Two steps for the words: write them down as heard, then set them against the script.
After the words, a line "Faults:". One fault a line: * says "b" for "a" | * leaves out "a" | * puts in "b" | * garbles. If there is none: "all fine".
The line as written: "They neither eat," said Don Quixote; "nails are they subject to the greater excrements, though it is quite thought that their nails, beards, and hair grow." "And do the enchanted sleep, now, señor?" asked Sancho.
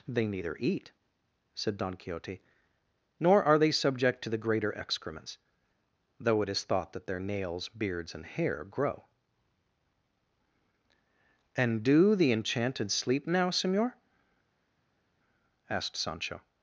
"They neither eat," said Don Quixote; "nor are they subject to the greater excrements, though it is thought that their nails, beards, and hair grow." "And do the enchanted sleep, now, señor?" asked Sancho.
Faults:
* says "nor" for "nails"
* leaves out "quite"